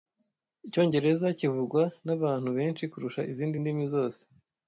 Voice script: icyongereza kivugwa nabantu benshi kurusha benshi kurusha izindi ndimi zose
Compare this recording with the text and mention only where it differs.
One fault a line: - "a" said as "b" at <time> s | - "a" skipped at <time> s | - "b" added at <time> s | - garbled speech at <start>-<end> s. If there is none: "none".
- "benshi kurusha" skipped at 3.2 s